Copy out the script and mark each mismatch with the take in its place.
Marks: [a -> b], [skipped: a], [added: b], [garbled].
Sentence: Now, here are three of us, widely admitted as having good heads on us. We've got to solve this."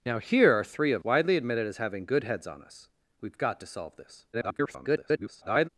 Now, here are three of [skipped: us,] widely admitted as having good heads on us. We've got to solve this." [garbled]